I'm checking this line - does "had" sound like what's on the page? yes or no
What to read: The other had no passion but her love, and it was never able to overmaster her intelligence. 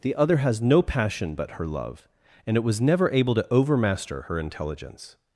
no